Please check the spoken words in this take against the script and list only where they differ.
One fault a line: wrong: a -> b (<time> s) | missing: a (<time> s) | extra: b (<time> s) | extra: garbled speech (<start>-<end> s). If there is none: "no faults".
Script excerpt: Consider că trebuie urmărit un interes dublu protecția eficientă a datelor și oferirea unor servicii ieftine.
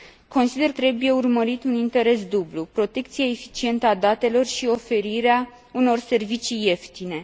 missing: că (0.7 s)